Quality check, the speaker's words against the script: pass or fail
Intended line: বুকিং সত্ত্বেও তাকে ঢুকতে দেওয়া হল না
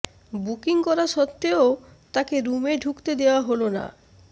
fail